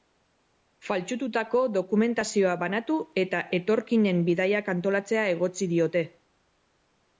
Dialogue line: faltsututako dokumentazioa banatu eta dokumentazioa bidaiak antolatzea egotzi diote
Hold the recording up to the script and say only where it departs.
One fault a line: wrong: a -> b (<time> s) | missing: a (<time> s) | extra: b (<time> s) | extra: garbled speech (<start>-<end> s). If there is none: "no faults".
wrong: dokumentazioa -> etorkinen (3.6 s)